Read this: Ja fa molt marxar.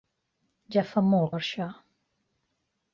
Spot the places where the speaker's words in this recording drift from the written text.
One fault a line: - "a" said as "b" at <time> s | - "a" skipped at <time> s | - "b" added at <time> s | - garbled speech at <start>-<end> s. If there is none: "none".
none